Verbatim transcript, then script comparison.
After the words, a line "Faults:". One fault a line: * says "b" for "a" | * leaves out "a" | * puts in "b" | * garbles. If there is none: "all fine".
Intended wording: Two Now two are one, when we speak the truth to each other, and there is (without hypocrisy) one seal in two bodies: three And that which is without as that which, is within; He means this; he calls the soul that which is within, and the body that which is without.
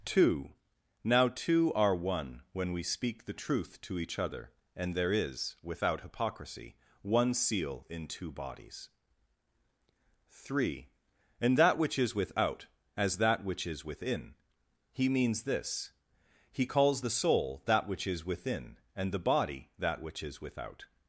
Two Now two are one, when we speak the truth to each other, and there is (without hypocrisy) one seal in two bodies: three And that which is without as that which, is within; He means this; he calls the soul that which is within, and the body that which is without.
Faults:
all fine